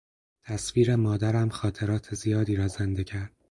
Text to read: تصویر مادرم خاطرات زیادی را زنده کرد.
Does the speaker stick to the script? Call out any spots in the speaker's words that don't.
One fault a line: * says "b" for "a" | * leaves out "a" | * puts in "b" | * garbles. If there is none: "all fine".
all fine